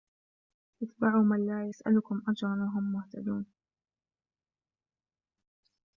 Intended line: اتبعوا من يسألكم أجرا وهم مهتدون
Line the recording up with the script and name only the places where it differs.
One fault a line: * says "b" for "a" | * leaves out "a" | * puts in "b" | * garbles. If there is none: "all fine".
* puts in "لا"